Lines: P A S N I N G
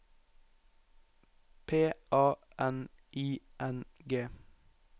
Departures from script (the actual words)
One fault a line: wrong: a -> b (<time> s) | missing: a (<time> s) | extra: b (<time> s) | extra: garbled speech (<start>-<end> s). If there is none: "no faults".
missing: S (2.3 s)